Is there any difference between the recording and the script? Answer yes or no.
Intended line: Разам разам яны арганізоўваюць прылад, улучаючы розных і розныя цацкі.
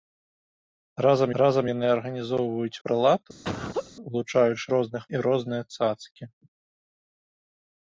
no